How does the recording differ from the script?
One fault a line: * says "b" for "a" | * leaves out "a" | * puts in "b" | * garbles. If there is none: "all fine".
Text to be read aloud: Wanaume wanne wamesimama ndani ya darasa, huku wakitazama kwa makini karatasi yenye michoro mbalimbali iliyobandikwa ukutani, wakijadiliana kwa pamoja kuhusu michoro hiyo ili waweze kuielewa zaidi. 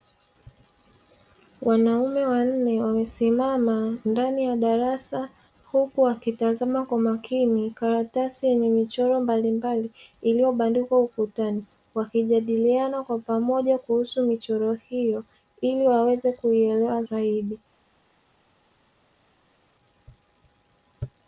all fine